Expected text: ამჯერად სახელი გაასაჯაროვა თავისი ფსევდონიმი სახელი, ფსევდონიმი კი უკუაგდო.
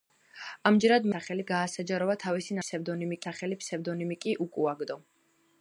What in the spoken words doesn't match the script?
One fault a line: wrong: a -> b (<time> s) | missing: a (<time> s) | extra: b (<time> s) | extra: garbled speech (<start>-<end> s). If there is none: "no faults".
no faults